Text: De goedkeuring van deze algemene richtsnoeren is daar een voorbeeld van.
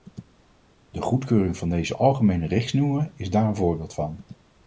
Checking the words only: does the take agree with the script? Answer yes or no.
yes